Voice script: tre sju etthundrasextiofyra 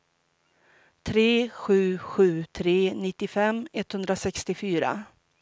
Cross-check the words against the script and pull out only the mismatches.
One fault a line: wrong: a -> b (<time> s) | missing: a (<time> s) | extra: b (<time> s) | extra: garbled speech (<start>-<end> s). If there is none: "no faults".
extra: sju tre nittiofem (2.0 s)